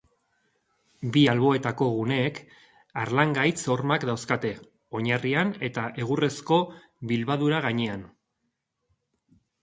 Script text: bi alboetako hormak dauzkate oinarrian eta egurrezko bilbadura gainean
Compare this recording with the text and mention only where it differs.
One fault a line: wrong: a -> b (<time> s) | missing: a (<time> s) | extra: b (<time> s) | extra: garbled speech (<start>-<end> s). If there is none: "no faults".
extra: guneek harlangaitz (2.0 s)